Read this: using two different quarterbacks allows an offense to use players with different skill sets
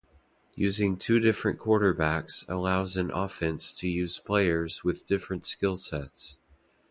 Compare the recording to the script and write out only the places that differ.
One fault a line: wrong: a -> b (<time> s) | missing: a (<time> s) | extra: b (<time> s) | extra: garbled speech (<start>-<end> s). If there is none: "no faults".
no faults